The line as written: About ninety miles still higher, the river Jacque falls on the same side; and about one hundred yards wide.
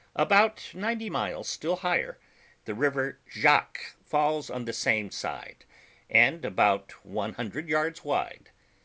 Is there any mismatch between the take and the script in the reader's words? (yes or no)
no